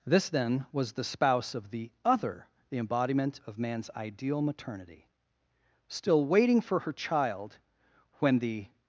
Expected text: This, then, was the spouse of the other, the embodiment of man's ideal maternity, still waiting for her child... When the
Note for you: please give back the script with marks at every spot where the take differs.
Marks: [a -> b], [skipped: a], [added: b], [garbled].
This, then, was the spouse of the other, the embodiment of man's ideal maternity, still waiting for her child... When the